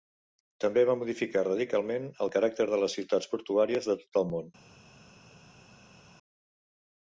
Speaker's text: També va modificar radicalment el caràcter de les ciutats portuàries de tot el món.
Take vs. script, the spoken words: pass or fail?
pass